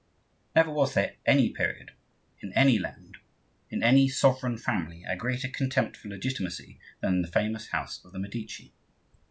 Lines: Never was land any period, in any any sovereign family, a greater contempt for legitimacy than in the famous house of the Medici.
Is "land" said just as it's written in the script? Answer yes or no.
no